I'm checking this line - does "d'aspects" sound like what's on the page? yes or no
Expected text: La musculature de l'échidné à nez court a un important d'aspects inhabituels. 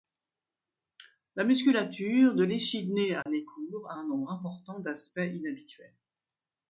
yes